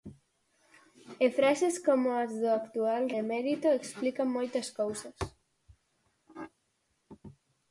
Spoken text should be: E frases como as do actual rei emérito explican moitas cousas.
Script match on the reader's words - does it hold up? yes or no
no